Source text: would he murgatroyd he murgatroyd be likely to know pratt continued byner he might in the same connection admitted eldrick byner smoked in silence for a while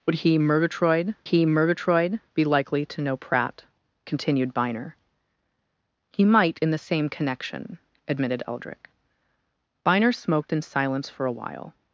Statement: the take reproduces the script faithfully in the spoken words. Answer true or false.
true